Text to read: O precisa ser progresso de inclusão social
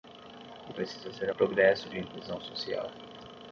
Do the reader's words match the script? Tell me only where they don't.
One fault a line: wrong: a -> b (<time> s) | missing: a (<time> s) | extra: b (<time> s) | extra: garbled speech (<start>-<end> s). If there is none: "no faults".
no faults